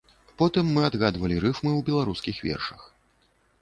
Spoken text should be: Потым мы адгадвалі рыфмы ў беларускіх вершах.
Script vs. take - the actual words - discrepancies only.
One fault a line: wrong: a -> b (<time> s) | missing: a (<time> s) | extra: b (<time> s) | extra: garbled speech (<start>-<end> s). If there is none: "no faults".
no faults